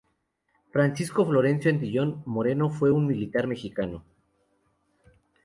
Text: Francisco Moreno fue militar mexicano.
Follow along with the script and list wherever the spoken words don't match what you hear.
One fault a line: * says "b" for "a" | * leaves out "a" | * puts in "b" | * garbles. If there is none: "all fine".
* puts in "Florencio Antillón"
* puts in "un"